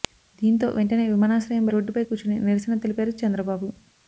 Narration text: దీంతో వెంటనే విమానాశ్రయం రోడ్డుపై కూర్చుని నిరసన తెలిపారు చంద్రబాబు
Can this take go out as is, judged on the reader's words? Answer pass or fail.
pass